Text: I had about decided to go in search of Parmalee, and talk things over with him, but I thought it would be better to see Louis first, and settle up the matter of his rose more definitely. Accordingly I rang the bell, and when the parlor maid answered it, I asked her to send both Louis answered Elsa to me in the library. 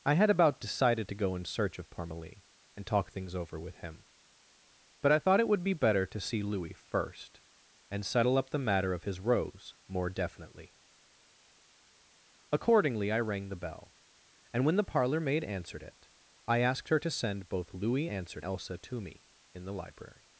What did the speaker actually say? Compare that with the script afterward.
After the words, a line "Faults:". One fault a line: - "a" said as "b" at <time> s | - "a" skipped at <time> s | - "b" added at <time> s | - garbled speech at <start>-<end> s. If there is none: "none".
I had about decided to go in search of Parmalee, and talk things over with him, but I thought it would be better to see Louis first, and settle up the matter of his rose more definitely. Accordingly I rang the bell, and when the parlor maid answered it, I asked her to send both Louis answered Elsa to me in the library.
Faults:
none